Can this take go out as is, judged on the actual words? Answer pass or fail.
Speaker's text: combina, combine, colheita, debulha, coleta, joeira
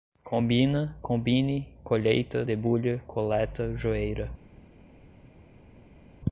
pass